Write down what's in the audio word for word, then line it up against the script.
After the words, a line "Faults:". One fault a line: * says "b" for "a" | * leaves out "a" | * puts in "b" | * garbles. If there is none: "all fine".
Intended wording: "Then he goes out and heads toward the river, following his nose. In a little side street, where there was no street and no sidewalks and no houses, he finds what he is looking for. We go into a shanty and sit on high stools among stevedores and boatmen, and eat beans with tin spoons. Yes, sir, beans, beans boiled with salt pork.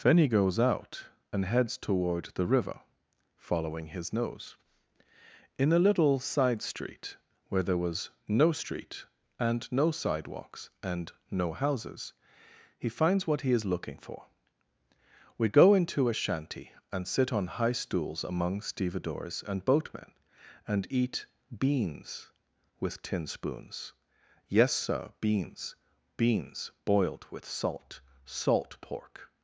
"Then he goes out and heads toward the river, following his nose. In a little side street, where there was no street and no sidewalks and no houses, he finds what he is looking for. We go into a shanty and sit on high stools among stevedores and boatmen, and eat beans with tin spoons. Yes, sir, beans, beans boiled with salt salt pork.
Faults:
* puts in "salt"